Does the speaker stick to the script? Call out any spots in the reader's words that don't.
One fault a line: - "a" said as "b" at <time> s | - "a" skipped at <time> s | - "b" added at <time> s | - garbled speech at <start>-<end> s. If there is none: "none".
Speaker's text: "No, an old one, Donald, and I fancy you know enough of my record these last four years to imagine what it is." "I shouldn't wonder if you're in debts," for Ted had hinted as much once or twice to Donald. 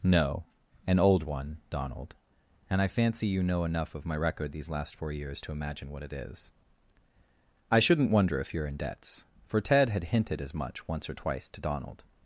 none